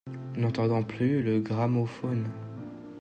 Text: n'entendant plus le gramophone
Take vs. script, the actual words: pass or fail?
pass